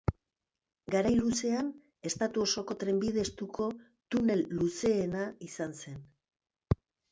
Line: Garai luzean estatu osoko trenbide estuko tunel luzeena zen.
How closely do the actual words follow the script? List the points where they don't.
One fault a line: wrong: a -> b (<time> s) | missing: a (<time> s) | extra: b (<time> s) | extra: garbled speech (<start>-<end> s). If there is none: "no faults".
extra: izan (5.5 s)